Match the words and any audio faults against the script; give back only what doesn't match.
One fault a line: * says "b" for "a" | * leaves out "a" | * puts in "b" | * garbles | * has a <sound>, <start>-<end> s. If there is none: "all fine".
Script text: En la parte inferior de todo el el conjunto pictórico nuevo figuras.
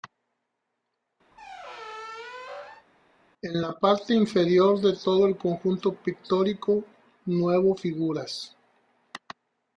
* has a squeak, 1.3-2.9 s
* leaves out "el"